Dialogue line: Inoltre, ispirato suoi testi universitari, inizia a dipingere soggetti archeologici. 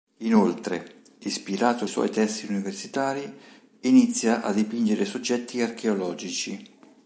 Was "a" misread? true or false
false